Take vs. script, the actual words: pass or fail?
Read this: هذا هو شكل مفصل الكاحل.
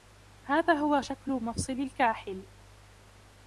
pass